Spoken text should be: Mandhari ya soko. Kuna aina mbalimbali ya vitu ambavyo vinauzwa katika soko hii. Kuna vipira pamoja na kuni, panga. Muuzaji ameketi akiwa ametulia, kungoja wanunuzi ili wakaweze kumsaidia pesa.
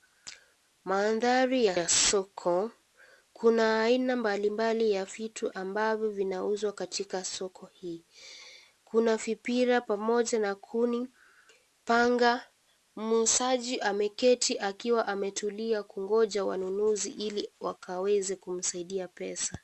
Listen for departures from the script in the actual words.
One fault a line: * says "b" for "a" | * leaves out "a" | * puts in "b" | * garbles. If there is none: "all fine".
* puts in "ya"